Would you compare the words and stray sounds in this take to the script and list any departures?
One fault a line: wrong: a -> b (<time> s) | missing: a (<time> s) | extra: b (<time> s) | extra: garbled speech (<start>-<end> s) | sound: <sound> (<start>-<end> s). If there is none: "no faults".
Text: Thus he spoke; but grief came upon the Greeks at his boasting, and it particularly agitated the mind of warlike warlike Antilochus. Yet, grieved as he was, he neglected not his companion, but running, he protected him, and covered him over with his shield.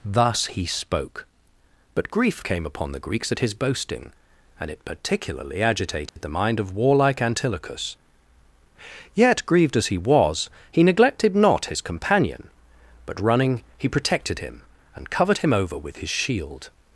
sound: dropout (6.1-6.2 s)
missing: warlike (7.2 s)